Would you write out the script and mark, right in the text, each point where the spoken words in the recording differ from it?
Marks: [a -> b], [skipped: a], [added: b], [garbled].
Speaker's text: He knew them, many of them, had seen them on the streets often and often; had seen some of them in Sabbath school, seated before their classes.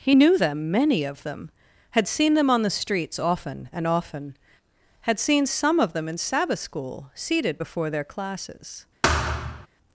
He knew them, many of them, had seen them on the streets often and often; had seen some of them in Sabbath school, seated before their classes.